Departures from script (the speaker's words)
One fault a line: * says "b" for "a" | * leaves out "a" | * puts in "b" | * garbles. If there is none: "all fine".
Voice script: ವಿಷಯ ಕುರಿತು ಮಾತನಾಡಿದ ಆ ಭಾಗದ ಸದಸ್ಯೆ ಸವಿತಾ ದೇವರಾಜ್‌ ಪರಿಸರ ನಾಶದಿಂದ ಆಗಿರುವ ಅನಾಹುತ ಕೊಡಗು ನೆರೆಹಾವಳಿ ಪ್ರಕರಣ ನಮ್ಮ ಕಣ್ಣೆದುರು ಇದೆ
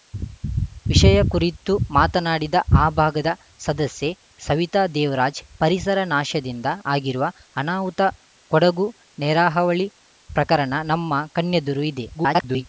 * garbles